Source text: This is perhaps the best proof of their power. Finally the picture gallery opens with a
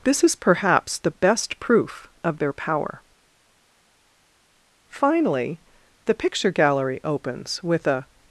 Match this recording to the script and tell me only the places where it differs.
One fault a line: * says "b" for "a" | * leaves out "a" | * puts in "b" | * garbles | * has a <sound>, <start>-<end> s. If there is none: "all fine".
all fine